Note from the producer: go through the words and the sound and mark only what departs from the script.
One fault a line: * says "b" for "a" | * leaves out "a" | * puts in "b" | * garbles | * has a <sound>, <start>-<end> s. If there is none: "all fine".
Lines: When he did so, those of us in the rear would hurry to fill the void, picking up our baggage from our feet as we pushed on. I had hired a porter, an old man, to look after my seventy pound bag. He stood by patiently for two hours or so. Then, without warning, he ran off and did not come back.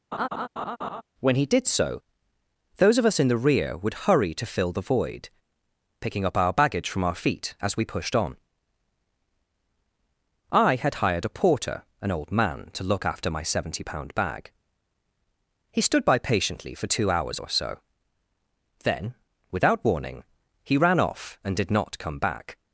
* has a laugh, 0.1-1.0 s